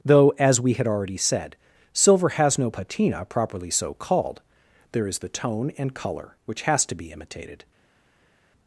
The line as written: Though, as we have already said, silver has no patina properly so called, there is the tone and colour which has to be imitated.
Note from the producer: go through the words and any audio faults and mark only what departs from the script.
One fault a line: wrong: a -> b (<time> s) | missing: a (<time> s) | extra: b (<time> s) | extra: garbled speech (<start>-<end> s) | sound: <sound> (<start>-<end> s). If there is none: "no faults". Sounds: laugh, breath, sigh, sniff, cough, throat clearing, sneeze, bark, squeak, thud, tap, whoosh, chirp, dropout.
wrong: have -> had (0.7 s)